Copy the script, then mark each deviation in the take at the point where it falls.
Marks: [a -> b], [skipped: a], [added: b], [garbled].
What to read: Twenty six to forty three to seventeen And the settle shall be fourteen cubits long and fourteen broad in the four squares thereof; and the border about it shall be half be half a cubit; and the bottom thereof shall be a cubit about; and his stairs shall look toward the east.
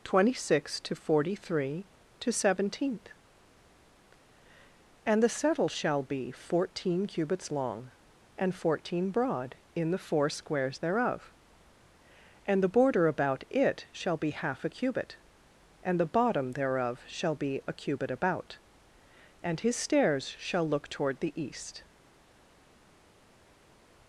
Twenty six to forty three to seventeen And the settle shall be fourteen cubits long and fourteen broad in the four squares thereof; and the border about it shall be half [skipped: be half] a cubit; and the bottom thereof shall be a cubit about; and his stairs shall look toward the east.